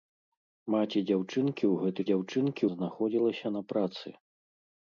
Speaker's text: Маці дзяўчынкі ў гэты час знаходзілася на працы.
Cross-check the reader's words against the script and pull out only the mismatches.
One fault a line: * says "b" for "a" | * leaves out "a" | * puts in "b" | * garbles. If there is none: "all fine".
* says "дзяўчынкі" for "час"